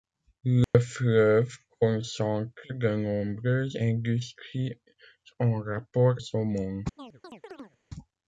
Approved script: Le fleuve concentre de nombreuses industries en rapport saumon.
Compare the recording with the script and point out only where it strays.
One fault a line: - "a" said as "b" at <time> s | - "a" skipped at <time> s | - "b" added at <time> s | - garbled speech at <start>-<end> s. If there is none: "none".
none